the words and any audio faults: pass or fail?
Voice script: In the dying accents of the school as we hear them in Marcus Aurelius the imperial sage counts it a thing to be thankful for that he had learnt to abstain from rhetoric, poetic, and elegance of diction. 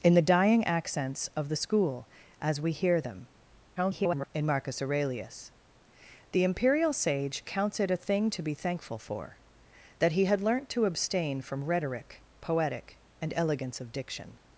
fail